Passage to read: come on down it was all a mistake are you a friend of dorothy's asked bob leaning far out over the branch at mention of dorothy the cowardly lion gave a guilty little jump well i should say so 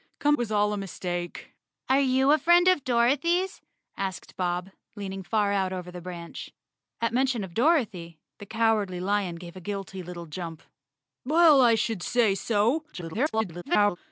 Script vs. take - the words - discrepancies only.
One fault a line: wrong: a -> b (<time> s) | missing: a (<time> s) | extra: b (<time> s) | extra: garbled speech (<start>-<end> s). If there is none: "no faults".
missing: on down it (0.3 s)
extra: garbled speech (12.9-14.0 s)